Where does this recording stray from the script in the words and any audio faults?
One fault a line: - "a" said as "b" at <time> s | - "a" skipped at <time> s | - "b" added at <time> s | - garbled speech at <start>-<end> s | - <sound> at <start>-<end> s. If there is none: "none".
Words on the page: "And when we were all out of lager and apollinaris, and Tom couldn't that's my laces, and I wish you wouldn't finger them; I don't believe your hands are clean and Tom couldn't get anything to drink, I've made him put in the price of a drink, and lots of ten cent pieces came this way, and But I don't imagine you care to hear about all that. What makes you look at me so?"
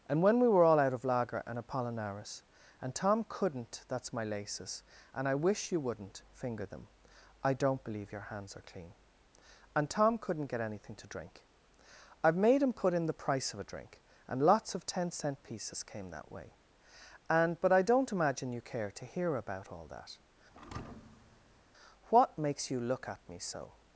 - "this" said as "that" at 16.1 s
- thud at 20.5-21.6 s